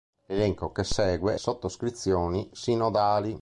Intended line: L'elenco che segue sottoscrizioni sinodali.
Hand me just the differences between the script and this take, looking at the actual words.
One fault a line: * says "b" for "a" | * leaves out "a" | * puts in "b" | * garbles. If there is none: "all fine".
all fine